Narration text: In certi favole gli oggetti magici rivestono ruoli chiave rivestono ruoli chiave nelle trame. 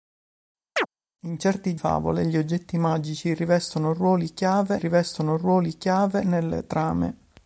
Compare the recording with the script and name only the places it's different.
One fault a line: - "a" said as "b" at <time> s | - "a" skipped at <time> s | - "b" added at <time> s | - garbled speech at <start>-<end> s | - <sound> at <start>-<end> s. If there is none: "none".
- chirp at 0.8-0.9 s